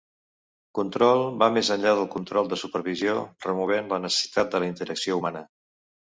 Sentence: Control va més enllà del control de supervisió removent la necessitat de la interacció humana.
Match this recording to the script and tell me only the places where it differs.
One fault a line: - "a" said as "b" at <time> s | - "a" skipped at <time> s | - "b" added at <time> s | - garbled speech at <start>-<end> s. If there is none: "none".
none